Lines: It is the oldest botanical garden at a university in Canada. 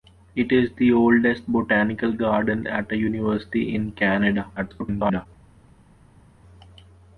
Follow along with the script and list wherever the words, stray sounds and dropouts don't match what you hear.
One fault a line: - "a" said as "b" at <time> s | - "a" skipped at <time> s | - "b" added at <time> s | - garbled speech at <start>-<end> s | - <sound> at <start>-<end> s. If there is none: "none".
- garbled speech at 4.6-5.3 s